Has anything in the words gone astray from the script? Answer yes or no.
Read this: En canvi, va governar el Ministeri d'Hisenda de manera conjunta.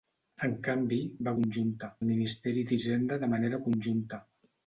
yes